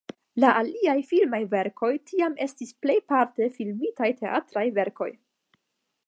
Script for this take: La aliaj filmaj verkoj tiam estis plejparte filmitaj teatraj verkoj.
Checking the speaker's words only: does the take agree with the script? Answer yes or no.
yes